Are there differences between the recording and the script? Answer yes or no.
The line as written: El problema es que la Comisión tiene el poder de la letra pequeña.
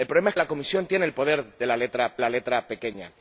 yes